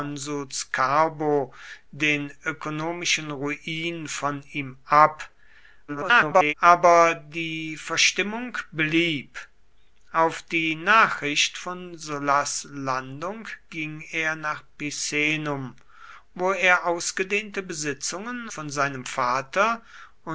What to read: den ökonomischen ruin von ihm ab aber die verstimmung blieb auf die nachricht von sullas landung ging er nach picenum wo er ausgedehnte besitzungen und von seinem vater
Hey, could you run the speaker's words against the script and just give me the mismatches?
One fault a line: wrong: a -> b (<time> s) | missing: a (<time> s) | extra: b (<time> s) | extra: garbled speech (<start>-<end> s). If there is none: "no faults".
extra: garbled speech (5.9-6.5 s)
missing: und (18.5 s)